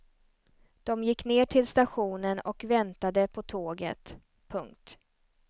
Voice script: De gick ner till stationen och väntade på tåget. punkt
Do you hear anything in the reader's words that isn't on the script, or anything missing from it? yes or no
no